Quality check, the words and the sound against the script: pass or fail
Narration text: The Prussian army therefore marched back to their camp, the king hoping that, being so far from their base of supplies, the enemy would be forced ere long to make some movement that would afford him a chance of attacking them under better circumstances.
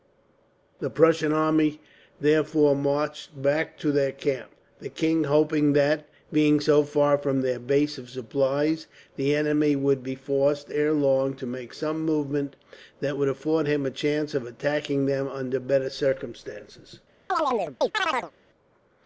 fail